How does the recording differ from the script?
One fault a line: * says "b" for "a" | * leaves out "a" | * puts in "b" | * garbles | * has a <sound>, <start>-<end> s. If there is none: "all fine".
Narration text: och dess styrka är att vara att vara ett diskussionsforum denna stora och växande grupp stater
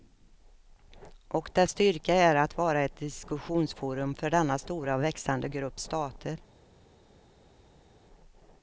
* leaves out "att vara"
* puts in "för"